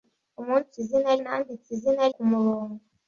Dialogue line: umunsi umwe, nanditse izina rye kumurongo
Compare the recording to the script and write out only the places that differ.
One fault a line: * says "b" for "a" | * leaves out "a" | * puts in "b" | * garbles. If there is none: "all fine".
* says "izina" for "umwe"
* leaves out "rye"